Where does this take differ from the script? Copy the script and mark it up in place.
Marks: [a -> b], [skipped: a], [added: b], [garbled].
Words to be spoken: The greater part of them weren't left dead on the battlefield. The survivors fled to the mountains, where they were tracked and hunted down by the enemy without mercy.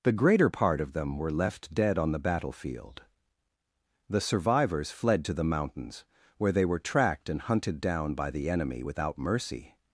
The greater part of them [weren't -> were] left dead on the battlefield. The survivors fled to the mountains, where they were tracked and hunted down by the enemy without mercy.